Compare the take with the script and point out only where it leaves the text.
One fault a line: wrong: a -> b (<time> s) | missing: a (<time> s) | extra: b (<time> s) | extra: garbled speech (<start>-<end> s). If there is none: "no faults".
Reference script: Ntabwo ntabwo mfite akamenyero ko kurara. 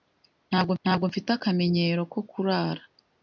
no faults